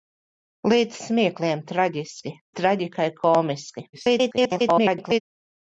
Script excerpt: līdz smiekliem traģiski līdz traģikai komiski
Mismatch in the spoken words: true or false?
true